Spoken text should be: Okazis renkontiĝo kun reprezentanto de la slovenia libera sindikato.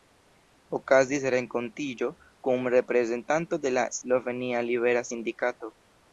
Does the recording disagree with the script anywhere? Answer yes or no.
no